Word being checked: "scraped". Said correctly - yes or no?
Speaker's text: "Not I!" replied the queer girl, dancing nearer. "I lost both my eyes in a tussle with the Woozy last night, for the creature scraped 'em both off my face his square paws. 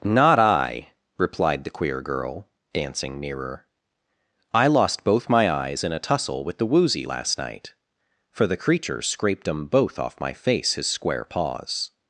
yes